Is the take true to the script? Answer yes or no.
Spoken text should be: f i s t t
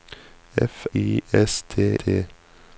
yes